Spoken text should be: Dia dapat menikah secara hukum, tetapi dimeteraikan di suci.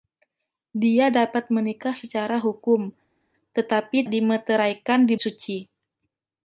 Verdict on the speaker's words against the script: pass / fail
pass